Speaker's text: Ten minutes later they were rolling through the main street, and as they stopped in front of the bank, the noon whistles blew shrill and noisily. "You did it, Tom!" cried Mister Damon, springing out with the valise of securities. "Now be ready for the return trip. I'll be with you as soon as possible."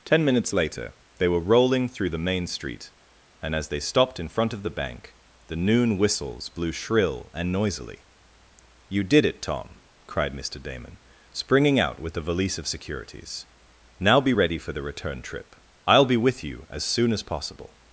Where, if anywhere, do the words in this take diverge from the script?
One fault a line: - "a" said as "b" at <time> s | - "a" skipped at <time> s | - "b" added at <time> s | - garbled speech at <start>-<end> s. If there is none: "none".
none